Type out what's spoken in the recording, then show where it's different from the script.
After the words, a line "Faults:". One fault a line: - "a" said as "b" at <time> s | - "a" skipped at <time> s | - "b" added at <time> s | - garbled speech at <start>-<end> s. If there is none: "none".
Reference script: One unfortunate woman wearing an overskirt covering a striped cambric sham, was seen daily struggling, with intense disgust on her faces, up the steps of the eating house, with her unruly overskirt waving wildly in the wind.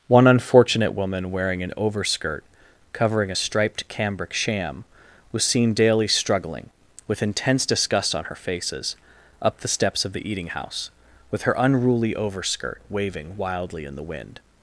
One unfortunate woman wearing an overskirt covering a striped cambric sham, was seen daily struggling, with intense disgust on her faces, up the steps of the eating house, with her unruly overskirt waving wildly in the wind.
Faults:
none